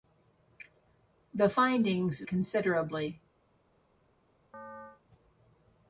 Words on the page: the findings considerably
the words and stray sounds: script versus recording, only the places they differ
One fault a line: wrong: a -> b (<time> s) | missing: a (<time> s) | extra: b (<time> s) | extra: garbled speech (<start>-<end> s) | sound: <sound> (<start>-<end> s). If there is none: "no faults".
sound: chirp (4.5-5.0 s)